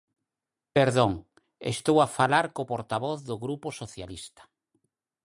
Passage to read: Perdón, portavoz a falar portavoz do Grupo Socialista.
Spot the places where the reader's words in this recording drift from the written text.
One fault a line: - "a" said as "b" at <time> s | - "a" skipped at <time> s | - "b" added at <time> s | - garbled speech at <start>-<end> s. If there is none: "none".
- "portavoz" said as "estou" at 1.8 s
- "co" added at 2.5 s